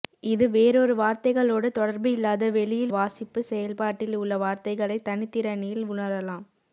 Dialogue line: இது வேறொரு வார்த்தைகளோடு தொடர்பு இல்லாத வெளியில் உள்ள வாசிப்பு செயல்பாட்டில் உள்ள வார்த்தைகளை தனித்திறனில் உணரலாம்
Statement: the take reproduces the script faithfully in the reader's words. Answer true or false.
false